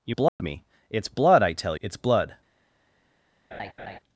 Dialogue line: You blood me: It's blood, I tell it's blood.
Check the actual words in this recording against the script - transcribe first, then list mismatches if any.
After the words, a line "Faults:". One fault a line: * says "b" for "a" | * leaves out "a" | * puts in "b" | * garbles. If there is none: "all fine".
You blood me: It's blood, I tell it's blood.
Faults:
all fine